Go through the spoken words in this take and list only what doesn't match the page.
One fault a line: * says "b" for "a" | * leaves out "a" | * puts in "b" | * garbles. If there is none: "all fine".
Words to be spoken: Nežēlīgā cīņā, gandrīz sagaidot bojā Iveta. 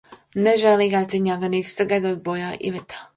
all fine